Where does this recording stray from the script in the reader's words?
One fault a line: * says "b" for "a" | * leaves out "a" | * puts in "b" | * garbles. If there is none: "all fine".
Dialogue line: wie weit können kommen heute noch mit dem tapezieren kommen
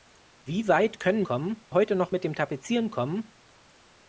all fine